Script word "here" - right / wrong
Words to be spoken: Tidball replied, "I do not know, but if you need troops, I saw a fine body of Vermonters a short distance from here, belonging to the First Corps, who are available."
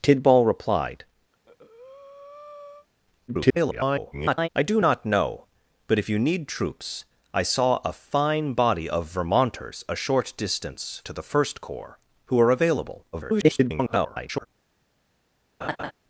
wrong